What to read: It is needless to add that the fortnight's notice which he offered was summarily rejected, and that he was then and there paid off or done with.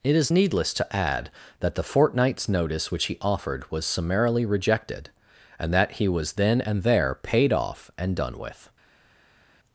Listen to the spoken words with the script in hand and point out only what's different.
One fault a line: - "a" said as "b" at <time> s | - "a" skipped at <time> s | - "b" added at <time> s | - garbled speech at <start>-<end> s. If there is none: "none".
- "or" said as "and" at 8.0 s